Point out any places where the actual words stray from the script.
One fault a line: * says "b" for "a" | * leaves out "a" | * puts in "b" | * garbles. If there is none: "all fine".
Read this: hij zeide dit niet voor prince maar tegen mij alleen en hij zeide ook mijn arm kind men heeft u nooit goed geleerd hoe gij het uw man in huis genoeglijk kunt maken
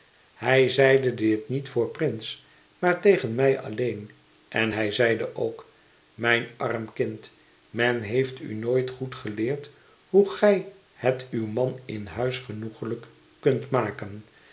all fine